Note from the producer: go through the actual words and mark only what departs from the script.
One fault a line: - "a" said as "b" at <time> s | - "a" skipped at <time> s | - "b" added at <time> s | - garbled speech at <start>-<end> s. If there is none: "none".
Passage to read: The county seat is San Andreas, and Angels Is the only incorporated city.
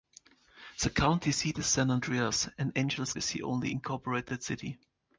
none